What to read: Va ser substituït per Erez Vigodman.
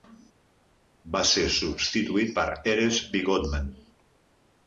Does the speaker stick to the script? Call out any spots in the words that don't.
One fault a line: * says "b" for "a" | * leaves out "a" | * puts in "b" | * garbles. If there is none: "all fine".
all fine